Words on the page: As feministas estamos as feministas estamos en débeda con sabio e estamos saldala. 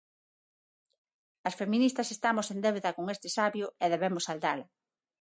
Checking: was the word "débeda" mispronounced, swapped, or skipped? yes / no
no